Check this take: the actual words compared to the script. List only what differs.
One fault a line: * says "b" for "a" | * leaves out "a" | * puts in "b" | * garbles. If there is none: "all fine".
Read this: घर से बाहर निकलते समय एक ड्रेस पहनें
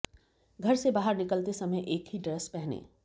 * puts in "ही"